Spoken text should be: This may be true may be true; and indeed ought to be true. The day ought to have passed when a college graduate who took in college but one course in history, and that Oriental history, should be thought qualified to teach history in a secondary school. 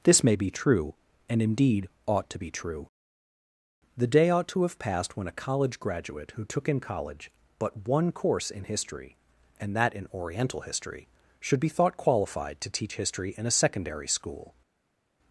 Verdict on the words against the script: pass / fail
fail